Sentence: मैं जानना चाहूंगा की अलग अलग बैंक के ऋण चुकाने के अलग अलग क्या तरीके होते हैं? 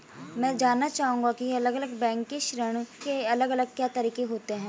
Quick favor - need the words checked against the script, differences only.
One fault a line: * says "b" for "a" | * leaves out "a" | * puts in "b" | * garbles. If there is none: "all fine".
* leaves out "चुकाने"